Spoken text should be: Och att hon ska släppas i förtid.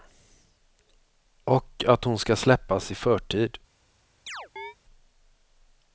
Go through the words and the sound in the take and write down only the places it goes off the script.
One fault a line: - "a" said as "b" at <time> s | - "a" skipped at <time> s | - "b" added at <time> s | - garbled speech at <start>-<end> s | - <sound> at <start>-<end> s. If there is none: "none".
- chirp at 4.3-4.7 s